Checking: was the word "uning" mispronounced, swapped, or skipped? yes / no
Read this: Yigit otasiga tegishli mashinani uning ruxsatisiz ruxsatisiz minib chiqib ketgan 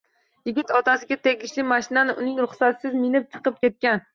no